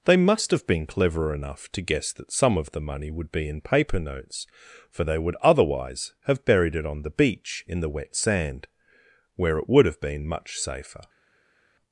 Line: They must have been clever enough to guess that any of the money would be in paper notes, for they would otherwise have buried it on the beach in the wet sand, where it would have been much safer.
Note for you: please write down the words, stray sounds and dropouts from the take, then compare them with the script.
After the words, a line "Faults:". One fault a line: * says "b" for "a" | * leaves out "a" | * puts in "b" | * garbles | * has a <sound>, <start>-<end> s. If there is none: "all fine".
They must have been clever enough to guess that some of the money would be in paper notes, for they would otherwise have buried it on the beach in the wet sand, where it would have been much safer.
Faults:
* says "some" for "any"